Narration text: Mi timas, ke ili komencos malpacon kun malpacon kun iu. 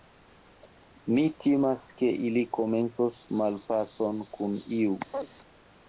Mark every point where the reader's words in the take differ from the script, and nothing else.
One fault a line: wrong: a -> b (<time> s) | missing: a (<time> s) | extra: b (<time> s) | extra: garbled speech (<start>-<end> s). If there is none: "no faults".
missing: malpacon kun (4.6 s)